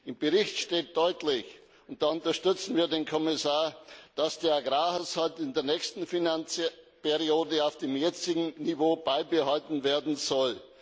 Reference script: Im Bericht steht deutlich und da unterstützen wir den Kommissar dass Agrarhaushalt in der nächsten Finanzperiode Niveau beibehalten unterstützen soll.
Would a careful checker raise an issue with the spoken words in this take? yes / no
yes